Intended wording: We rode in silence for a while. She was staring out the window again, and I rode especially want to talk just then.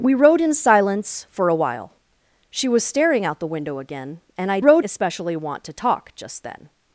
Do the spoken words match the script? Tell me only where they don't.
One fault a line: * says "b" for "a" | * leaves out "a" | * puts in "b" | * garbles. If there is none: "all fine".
all fine